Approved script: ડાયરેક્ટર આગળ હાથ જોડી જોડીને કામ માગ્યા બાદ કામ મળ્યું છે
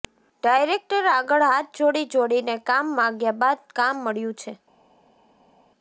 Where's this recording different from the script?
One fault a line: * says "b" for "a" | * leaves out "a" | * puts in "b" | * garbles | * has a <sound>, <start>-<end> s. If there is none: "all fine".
all fine